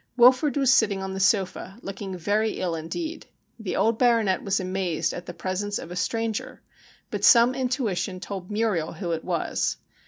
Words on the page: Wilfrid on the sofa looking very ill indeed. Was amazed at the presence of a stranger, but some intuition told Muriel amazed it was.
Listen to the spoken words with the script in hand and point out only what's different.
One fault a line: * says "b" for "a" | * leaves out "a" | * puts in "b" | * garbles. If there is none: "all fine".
* puts in "was sitting"
* puts in "The old Baronet"
* says "who" for "amazed"